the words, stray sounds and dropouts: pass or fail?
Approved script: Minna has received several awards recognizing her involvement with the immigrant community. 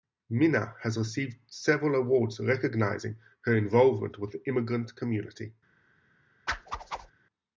fail